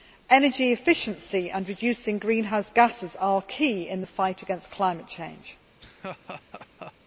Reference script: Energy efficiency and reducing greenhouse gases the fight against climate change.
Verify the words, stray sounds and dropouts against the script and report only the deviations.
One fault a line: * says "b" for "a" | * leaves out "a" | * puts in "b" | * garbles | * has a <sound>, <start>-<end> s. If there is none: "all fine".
* puts in "are key in"
* has a laugh, 5.8-6.9 s